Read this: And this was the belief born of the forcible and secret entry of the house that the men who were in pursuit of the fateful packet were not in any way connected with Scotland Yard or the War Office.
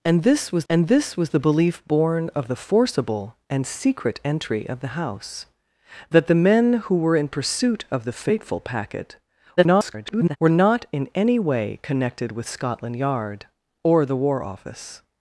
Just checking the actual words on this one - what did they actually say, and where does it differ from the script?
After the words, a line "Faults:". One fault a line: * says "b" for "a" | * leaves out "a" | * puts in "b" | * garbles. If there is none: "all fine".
And this was and this was the belief born of the forcible and secret entry of the house that the men who were in pursuit of the fateful packet [garbled] were not in any way connected with Scotland Yard or the War Office.
Faults:
* puts in "and this was"
* garbles